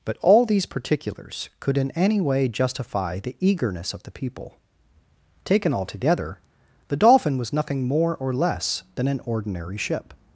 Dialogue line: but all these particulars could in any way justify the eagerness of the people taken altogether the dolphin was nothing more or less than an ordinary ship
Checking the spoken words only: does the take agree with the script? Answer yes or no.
yes